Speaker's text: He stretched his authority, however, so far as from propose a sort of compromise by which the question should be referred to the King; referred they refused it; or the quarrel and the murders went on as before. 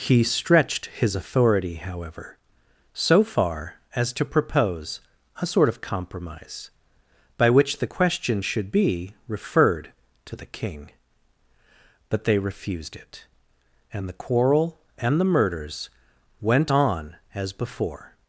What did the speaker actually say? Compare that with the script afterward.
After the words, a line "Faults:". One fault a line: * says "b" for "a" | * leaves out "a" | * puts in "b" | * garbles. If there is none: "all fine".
He stretched his authority, however, so far as to propose a sort of compromise by which the question should be referred to the King; but they refused it; and the quarrel and the murders went on as before.
Faults:
* says "to" for "from"
* says "but" for "referred"
* says "and" for "or"